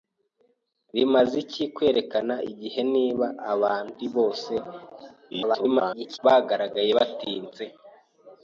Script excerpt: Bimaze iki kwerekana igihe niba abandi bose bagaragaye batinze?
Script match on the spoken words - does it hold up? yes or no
no